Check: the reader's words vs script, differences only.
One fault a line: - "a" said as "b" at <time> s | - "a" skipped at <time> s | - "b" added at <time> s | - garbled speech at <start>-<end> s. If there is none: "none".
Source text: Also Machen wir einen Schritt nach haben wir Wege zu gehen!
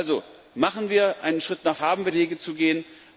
none